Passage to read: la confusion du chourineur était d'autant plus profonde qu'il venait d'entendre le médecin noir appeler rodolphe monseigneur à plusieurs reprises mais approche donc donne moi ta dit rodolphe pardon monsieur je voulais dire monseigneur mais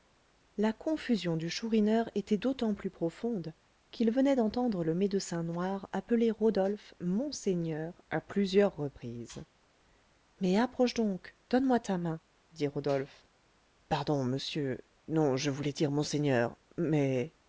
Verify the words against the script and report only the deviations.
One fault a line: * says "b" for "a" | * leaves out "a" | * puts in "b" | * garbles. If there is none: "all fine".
* puts in "main"
* puts in "non"